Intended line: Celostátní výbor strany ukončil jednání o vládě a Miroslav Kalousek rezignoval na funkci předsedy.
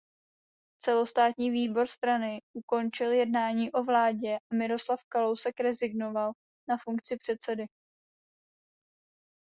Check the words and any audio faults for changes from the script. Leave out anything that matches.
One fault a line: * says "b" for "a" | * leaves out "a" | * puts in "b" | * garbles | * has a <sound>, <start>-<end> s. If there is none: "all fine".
all fine